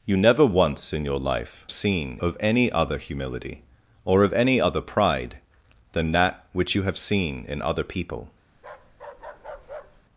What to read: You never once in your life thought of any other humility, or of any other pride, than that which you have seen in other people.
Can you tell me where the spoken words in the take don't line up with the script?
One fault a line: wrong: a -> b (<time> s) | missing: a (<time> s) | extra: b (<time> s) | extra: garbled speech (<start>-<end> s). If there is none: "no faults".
wrong: thought -> seen (1.7 s)